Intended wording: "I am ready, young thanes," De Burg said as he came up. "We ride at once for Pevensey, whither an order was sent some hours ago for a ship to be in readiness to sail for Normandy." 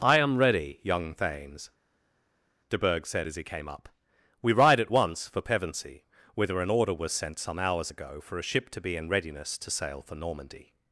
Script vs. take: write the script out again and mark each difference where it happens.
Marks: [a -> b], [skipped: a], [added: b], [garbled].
"I am ready, young thanes," De Burg said as he came up. "We ride at once for Pevensey, whither an order was sent some hours ago for a ship to be in readiness to sail for Normandy."